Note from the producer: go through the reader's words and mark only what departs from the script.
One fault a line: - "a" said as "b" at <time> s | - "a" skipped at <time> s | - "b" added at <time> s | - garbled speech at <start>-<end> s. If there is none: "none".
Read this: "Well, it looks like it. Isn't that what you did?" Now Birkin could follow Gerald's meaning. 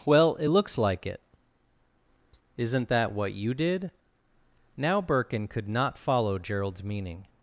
- "not" added at 5.7 s